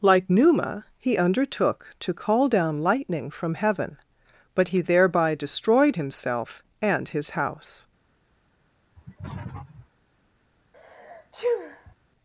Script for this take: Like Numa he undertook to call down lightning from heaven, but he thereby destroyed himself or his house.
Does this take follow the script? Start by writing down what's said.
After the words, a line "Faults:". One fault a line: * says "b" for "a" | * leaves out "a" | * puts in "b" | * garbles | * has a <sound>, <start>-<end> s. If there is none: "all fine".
Like Numa he undertook to call down lightning from heaven, but he thereby destroyed himself and his house.
Faults:
* says "and" for "or"
* has a sniff, 8.9-9.9 s
* has a sneeze, 10.7-11.9 s